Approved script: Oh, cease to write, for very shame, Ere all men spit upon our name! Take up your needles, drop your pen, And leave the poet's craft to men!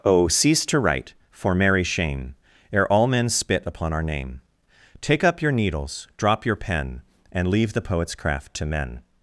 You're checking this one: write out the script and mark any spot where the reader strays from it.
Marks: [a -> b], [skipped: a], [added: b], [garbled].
Oh, cease to write, for [very -> merry] shame, Ere all men spit upon our name! Take up your needles, drop your pen, And leave the poet's craft to men!